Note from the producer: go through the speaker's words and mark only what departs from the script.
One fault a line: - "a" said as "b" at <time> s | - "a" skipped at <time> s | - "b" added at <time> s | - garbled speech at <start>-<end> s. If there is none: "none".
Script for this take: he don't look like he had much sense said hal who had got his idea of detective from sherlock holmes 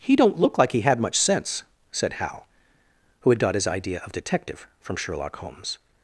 none